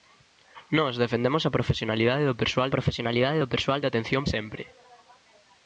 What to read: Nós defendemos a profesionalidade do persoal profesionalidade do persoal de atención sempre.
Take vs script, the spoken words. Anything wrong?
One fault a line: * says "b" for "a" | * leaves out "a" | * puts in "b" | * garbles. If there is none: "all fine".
all fine